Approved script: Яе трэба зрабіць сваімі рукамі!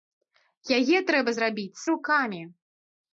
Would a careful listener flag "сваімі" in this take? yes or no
yes